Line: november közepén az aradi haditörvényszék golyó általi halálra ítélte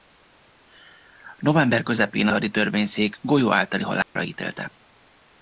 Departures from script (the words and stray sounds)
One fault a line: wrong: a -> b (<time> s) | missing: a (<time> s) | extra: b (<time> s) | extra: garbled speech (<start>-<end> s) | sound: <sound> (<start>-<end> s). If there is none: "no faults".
missing: az aradi (2.3 s)
sound: dropout (4.0-4.2 s)